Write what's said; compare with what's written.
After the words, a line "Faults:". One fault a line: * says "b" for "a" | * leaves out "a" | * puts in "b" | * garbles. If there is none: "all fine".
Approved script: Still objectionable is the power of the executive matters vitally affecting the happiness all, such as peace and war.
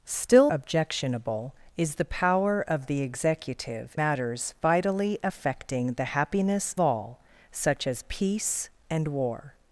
Still objectionable is the power of the executive matters vitally affecting the happiness all, such as peace and war.
Faults:
all fine